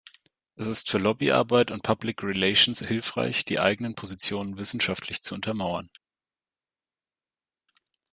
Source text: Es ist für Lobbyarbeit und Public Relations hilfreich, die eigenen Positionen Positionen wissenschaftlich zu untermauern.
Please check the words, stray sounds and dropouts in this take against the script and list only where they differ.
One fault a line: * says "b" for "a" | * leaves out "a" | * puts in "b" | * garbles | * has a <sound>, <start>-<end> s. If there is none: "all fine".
* leaves out "Positionen"